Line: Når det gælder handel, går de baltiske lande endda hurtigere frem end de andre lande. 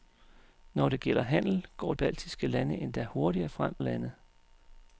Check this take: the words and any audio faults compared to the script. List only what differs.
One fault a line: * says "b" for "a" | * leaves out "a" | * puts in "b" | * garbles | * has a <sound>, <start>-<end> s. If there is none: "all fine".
* leaves out "de"
* leaves out "end de andre"